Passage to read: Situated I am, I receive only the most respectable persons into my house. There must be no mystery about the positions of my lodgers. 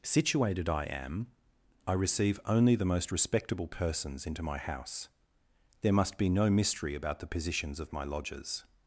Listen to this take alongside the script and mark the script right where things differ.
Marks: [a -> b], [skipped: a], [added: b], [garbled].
Situated I am, I receive only the most respectable persons into my house. There must be no mystery about the positions of my lodgers.